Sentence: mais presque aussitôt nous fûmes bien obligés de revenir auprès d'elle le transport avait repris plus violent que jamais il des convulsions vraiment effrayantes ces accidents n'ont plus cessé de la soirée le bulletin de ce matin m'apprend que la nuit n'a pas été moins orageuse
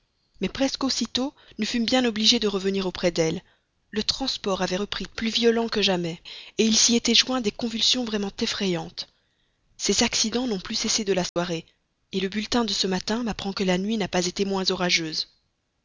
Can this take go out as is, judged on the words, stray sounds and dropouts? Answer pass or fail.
fail